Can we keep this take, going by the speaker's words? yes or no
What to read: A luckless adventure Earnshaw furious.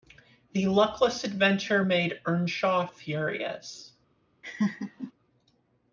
no